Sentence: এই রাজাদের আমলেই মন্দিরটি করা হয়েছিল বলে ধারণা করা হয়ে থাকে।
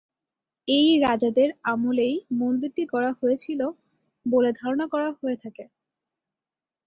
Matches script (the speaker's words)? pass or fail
pass